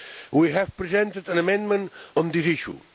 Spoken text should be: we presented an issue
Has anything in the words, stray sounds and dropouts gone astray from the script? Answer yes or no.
yes